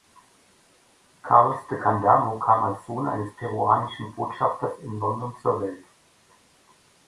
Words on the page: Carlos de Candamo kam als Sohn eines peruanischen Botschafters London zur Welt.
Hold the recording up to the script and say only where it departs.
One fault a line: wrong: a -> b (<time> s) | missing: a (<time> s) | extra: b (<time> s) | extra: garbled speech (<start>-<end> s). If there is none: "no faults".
extra: in (4.8 s)